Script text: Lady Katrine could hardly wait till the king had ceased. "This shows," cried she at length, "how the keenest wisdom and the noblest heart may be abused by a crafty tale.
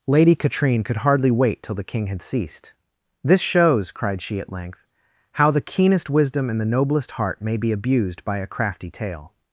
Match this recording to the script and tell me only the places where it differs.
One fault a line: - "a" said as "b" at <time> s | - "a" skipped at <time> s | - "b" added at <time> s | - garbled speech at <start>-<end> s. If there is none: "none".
none